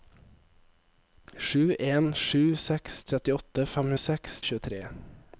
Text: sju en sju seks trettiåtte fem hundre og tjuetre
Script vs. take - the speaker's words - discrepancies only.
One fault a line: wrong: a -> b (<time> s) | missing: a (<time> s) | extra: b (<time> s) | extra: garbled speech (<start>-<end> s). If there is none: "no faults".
wrong: hundre -> seks (4.0 s)